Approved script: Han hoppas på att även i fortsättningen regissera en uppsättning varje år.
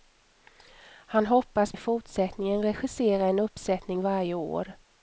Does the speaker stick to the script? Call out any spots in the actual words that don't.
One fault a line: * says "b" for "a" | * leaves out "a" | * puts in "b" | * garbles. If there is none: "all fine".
* leaves out "på att även"